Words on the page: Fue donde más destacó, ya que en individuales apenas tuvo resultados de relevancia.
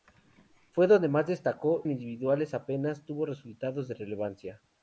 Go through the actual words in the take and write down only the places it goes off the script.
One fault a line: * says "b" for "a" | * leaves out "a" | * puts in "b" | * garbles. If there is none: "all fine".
* leaves out "ya que"